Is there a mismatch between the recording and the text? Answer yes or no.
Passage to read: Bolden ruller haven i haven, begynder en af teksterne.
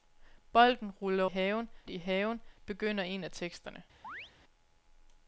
no